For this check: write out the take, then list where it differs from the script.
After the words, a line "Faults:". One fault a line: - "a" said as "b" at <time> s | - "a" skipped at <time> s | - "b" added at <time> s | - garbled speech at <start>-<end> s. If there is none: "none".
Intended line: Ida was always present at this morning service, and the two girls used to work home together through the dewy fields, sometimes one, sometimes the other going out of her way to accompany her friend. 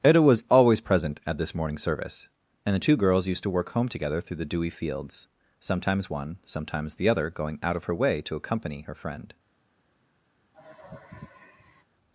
Ida was always present at this morning service, and the two girls used to work home together through the dewy fields, sometimes one, sometimes the other going out of her way to accompany her friend.
Faults:
none